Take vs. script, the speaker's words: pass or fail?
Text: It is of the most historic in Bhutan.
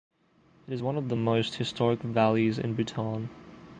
fail